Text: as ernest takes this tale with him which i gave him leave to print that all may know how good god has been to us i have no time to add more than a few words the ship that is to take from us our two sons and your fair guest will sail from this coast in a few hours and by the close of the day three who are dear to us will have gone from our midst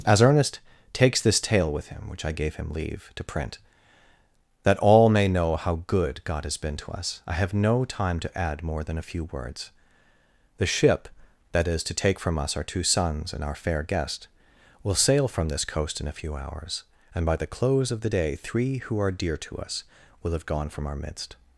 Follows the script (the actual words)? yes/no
no